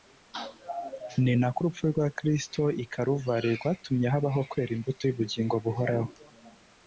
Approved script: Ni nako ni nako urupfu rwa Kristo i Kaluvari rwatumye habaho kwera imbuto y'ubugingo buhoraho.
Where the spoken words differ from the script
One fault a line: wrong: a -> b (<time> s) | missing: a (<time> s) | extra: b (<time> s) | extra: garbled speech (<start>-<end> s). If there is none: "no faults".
missing: ni nako (1.6 s)